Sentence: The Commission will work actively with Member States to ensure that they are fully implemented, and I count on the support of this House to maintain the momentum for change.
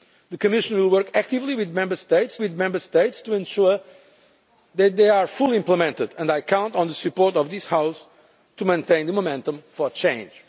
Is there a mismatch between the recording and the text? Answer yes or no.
yes